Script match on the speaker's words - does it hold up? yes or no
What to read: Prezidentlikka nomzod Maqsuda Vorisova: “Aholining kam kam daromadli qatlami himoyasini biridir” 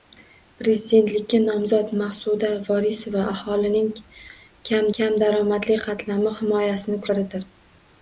yes